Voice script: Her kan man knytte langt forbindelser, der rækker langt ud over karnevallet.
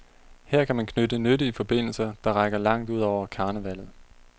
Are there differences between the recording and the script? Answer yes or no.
yes